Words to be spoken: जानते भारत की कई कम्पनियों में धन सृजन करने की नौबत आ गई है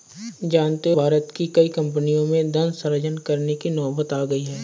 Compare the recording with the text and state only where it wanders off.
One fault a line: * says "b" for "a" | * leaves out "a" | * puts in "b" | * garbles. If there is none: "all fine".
all fine